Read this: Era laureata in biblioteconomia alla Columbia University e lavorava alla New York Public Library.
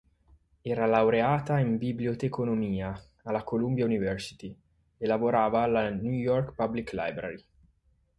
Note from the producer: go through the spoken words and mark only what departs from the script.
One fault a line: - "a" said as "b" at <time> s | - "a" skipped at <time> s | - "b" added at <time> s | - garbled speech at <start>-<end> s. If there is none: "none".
none